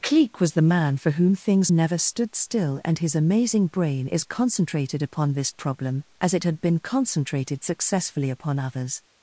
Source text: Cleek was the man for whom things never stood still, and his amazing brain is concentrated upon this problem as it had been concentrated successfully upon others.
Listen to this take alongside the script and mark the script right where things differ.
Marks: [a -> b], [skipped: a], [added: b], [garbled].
Cleek was the man for whom things never stood still, and his amazing brain is concentrated upon this problem as it had been concentrated successfully upon others.